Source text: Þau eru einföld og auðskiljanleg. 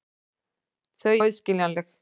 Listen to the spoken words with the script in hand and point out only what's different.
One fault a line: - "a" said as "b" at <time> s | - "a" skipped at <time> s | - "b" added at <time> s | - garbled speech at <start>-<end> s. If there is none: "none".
- "eru einföld" skipped at 1.1 s